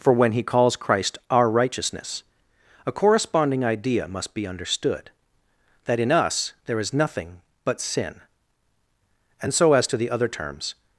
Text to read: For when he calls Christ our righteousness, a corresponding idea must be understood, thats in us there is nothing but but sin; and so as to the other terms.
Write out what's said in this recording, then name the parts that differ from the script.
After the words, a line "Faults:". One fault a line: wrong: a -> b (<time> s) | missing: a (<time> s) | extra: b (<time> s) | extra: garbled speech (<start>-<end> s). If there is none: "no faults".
For when he calls Christ our righteousness, a corresponding idea must be understood, that in us there is nothing but sin; and so as to the other terms.
Faults:
wrong: thats -> that (5.8 s)
missing: but (7.8 s)